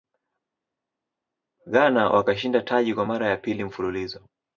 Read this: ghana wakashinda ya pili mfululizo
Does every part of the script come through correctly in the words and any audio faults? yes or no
no